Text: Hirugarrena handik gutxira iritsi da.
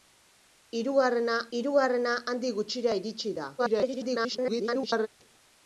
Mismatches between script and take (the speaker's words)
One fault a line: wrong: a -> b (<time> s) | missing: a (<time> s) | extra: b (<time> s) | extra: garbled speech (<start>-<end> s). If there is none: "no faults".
extra: hirugarrena (1.6 s)
extra: garbled speech (3.6-5.1 s)